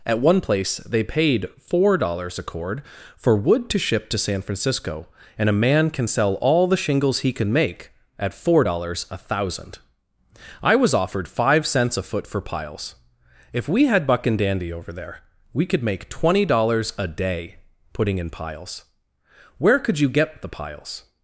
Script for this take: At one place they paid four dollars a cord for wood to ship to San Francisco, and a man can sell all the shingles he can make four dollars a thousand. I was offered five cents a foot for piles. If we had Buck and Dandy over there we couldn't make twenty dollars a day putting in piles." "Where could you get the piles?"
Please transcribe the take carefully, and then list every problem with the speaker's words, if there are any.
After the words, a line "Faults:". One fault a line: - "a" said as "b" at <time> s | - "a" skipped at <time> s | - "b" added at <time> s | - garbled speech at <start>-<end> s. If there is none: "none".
At one place they paid four dollars a cord for wood to ship to San Francisco, and a man can sell all the shingles he can make at four dollars a thousand. I was offered five cents a foot for piles. If we had Buck and Dandy over there we could make twenty dollars a day putting in piles." "Where could you get the piles?"
Faults:
- "at" added at 8.2 s
- "couldn't" said as "could" at 15.6 s